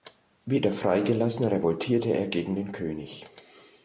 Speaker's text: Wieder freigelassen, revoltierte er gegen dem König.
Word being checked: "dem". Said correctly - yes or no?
no